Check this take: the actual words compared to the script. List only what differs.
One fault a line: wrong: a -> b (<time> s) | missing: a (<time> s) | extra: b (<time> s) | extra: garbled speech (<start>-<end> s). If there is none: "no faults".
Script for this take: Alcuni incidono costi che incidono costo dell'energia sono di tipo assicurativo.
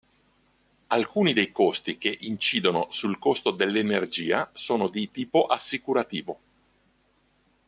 wrong: incidono -> dei (1.3 s)
extra: sul (2.9 s)